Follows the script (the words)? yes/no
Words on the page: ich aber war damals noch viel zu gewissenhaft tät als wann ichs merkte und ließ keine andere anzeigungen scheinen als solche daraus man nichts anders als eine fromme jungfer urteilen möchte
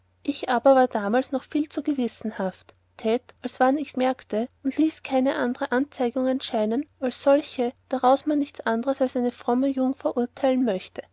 yes